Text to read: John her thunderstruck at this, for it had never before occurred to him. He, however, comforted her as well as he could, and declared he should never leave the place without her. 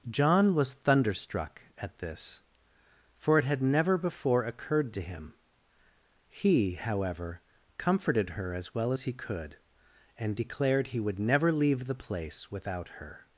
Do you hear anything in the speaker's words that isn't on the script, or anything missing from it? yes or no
yes